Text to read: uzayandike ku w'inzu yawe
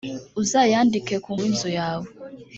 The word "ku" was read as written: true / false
true